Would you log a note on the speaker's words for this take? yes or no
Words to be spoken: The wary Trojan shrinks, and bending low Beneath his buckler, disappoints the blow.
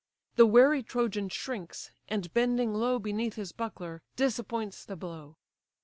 no